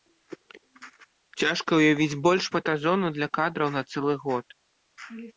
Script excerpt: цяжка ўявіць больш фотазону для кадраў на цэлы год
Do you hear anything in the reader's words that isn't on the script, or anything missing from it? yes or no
no